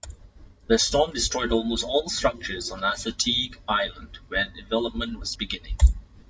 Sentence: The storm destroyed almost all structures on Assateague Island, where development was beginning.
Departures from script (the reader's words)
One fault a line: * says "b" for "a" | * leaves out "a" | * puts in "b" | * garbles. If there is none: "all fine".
all fine